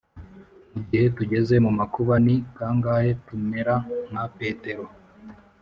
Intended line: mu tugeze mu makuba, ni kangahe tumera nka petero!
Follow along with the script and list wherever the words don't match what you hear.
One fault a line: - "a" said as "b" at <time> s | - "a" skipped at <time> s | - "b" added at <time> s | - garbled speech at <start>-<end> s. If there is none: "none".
- "gihe" added at 0.9 s